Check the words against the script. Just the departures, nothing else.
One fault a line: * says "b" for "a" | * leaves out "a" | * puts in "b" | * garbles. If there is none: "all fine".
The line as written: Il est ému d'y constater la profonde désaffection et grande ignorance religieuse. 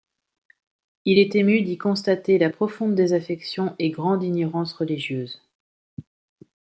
all fine